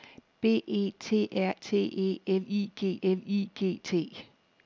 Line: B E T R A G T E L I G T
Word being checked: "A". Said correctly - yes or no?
no